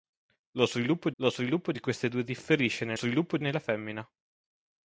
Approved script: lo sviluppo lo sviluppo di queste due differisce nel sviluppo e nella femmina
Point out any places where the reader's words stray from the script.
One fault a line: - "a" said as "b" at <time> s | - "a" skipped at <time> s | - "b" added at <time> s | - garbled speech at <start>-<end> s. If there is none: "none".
none